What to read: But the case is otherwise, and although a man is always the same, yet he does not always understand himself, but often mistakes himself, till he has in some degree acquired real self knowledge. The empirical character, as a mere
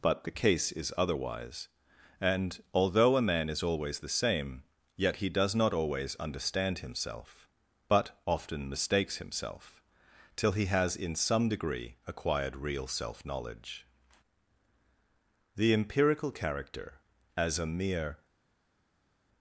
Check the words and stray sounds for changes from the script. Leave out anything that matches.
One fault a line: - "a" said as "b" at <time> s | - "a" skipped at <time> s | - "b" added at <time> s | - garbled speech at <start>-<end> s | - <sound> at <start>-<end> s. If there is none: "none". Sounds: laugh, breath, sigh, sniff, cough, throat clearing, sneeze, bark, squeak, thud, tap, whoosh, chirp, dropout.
none